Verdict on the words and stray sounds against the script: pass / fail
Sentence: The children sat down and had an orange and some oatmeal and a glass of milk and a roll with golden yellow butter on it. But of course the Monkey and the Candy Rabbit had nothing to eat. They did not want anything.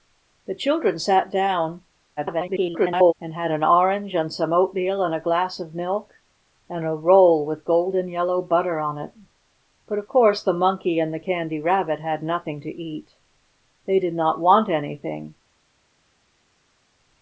fail